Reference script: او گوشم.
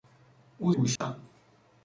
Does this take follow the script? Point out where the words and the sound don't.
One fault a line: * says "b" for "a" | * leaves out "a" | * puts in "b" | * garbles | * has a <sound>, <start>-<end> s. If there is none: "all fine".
* has a dropout, 1.0-1.0 s